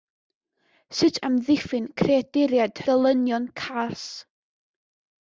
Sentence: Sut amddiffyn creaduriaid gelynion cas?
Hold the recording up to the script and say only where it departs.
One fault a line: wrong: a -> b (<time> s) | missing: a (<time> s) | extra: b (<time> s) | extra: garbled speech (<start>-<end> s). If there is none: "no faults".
no faults